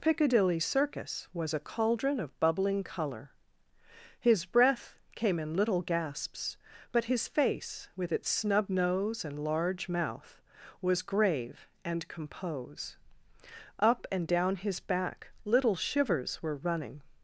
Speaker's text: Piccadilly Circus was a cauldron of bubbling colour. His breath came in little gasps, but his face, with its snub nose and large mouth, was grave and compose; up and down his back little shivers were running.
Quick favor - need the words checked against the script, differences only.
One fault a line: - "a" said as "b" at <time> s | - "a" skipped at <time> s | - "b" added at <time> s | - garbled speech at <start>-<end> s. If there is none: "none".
none